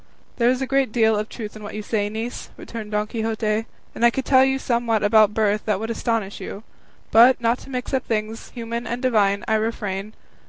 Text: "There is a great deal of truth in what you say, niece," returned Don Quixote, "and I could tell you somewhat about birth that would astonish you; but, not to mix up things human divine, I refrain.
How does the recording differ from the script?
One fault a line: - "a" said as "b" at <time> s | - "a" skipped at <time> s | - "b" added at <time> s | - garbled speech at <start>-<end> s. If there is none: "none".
- "and" added at 8.9 s